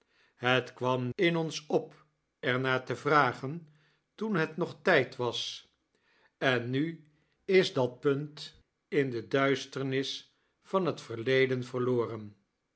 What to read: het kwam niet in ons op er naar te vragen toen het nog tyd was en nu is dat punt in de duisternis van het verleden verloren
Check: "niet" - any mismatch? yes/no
yes